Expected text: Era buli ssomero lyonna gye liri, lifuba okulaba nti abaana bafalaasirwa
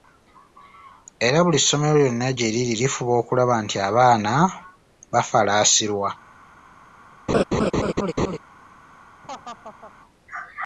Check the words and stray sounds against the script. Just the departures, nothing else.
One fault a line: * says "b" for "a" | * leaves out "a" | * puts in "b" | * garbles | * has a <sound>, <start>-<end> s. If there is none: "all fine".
* has a laugh, 7.3-8.4 s
* has a laugh, 9.2-9.9 s